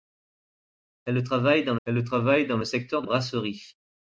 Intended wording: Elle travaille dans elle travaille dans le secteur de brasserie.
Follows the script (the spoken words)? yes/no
yes